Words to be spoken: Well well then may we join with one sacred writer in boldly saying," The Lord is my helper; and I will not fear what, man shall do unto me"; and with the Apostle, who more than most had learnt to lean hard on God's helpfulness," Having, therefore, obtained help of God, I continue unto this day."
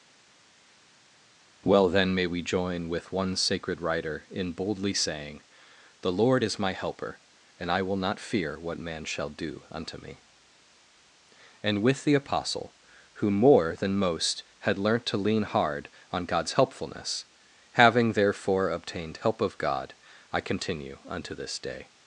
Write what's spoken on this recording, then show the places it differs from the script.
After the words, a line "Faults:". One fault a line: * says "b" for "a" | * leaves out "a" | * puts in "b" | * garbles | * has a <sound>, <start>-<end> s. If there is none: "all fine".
Well then may we join with one sacred writer in boldly saying," The Lord is my helper; and I will not fear what, man shall do unto me"; and with the Apostle, who more than most had learnt to lean hard on God's helpfulness," Having, therefore, obtained help of God, I continue unto this day."
Faults:
* leaves out "well"